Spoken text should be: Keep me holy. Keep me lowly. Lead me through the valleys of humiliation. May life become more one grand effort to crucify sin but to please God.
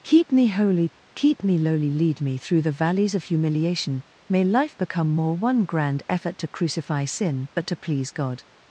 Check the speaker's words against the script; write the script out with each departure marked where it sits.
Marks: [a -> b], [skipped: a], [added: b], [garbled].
Keep me holy. Keep me lowly. Lead me through the valleys of humiliation. May life become more one grand effort to crucify sin but to please God.